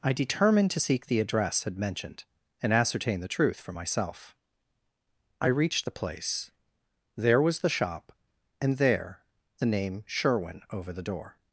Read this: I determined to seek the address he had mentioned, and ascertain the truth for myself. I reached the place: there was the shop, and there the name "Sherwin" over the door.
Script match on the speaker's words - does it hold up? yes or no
no